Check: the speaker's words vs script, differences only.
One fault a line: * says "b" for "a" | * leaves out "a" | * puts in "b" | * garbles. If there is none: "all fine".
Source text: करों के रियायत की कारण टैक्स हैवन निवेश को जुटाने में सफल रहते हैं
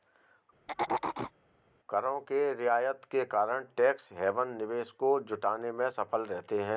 * says "के" for "की"